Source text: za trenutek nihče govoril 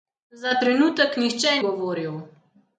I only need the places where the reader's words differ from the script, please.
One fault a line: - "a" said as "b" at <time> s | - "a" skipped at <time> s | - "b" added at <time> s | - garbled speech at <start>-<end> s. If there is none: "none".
none